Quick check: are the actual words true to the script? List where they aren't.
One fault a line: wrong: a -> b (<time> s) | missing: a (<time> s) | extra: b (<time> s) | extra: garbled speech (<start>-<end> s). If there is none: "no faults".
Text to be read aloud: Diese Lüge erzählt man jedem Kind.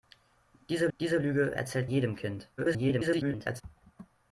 extra: diese (1.0 s)
missing: man (1.9 s)
extra: garbled speech (2.6-3.6 s)